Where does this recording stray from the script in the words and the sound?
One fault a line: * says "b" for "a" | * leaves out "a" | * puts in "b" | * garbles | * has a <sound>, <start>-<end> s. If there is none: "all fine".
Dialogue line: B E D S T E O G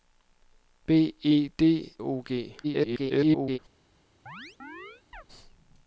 * leaves out "S T E"
* garbles
* has a chirp, 4.3-5.2 s